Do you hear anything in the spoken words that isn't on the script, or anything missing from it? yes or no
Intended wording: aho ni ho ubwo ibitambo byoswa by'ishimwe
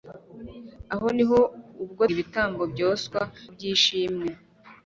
no